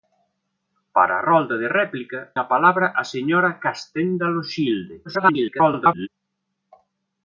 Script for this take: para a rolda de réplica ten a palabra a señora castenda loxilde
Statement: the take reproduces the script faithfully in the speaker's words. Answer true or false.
false